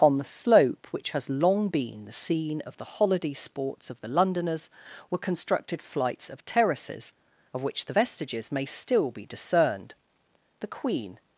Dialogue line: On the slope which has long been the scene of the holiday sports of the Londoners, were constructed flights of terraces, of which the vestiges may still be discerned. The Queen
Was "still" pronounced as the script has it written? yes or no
yes